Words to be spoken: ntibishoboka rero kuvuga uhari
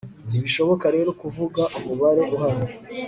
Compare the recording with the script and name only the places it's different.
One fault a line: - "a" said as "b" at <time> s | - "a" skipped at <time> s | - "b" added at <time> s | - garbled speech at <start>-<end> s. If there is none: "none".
- "umubare" added at 1.8 s